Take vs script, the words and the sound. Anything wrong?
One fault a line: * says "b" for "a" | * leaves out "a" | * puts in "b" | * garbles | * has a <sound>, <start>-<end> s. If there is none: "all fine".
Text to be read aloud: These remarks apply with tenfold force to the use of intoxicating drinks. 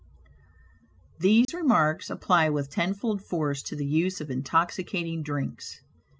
* has a dropout, 1.4-1.5 s